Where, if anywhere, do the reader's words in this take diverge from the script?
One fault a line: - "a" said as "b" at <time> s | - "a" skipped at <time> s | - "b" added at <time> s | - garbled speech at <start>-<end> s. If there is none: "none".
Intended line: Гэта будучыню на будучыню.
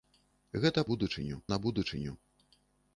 none